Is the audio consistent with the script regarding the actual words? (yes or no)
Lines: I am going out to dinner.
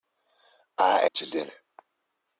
no